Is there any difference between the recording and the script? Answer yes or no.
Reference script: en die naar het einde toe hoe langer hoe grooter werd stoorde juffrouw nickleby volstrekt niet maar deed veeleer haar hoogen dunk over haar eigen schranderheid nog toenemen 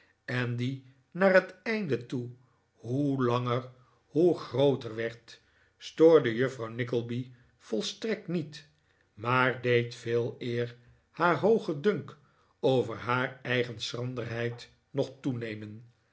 no